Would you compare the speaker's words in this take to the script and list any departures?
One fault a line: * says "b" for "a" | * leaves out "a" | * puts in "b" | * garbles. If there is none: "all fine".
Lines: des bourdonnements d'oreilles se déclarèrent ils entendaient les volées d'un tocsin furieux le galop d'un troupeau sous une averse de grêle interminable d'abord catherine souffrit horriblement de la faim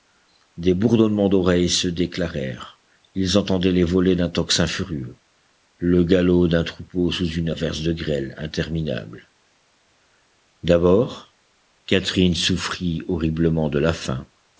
all fine